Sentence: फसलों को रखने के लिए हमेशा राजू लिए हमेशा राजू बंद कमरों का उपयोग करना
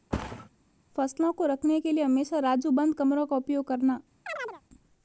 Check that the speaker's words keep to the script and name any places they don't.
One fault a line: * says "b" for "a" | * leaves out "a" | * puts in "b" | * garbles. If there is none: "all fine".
* leaves out "लिए हमेशा राजू"